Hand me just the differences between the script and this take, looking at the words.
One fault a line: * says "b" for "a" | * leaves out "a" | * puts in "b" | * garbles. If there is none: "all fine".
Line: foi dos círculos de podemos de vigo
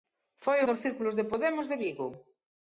all fine